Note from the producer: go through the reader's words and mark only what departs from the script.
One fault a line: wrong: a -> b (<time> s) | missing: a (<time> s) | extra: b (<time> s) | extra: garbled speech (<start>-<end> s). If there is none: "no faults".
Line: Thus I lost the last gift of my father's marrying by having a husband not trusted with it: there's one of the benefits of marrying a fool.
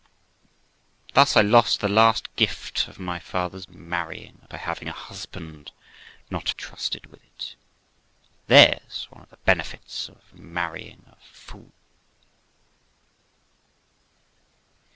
no faults